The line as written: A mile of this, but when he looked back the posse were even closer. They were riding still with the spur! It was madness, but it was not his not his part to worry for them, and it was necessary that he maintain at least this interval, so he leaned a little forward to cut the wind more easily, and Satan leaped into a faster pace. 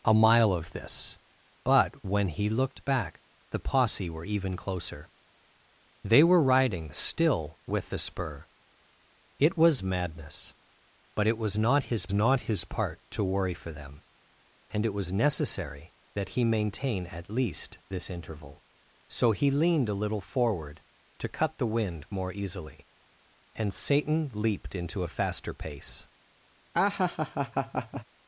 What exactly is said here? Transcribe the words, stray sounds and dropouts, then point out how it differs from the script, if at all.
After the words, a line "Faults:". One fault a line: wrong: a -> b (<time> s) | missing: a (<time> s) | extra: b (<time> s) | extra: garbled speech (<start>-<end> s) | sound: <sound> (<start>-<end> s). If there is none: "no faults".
A mile of this, but when he looked back the posse were even closer. They were riding still with the spur! It was madness, but it was not his not his part to worry for them, and it was necessary that he maintain at least this interval, so he leaned a little forward to cut the wind more easily, and Satan leaped into a faster pace.
Faults:
sound: laugh (26.7-28.0 s)